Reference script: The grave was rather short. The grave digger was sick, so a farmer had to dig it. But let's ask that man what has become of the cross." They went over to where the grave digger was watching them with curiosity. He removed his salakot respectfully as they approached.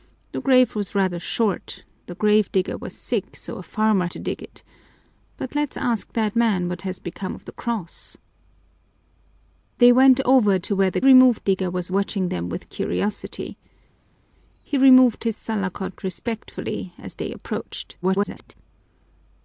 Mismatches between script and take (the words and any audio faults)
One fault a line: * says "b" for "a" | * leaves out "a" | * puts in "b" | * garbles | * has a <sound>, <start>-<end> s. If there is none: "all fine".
* leaves out "had"
* says "removed" for "grave"
* garbles